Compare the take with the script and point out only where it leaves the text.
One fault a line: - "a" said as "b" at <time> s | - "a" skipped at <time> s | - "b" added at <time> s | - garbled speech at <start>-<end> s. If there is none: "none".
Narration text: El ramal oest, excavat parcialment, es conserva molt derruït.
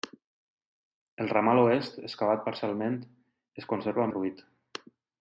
- "molt" skipped at 4.1 s